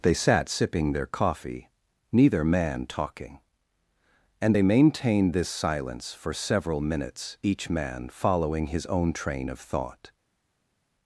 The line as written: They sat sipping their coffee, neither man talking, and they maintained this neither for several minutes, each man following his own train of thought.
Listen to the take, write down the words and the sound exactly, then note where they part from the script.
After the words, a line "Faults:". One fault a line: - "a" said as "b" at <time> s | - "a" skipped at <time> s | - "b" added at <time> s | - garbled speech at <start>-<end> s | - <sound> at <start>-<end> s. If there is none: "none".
They sat sipping their coffee, neither man talking, and they maintained this silence for several minutes, each man following his own train of thought.
Faults:
- "neither" said as "silence" at 5.5 s